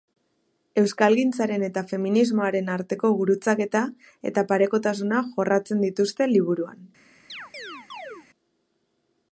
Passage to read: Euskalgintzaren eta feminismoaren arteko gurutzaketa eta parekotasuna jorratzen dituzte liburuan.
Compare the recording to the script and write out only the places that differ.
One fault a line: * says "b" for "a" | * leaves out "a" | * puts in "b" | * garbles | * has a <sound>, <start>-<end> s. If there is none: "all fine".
* has a chirp, 7.3-8.3 s